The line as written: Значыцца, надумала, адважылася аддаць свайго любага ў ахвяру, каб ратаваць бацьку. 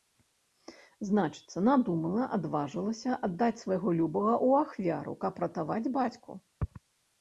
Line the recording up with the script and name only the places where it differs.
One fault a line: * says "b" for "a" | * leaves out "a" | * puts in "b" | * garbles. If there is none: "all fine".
all fine